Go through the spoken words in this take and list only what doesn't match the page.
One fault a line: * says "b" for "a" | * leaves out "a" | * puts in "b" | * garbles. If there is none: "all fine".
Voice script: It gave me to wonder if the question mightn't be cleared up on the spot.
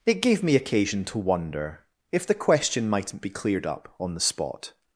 * puts in "occasion"